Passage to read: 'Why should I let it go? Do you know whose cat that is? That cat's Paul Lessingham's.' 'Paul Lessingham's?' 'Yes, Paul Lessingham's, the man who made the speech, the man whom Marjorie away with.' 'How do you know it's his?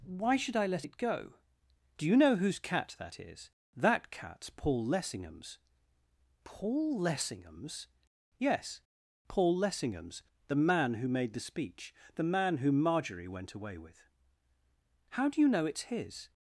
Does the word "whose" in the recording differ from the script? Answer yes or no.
no